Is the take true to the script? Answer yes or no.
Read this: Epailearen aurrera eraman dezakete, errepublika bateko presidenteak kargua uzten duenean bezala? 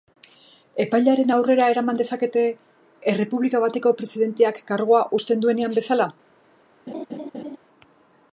yes